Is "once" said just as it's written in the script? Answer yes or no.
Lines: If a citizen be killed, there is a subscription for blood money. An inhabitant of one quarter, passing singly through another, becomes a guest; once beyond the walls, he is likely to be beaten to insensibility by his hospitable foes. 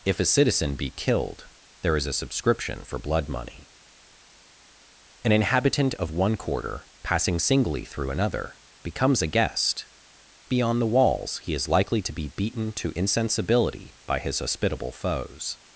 no